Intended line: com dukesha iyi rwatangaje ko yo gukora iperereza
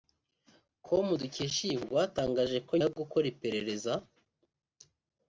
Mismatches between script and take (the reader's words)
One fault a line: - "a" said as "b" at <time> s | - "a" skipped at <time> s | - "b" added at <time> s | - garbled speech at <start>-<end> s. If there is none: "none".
none